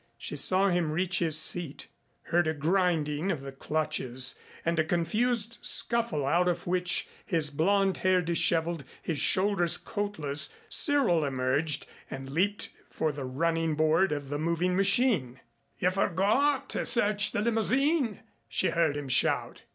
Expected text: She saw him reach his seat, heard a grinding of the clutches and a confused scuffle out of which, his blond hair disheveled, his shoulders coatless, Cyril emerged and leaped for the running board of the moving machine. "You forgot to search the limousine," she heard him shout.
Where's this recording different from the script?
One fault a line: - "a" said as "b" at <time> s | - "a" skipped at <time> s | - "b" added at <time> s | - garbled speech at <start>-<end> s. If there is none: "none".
none